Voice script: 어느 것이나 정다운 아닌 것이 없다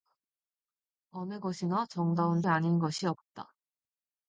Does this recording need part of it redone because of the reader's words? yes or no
no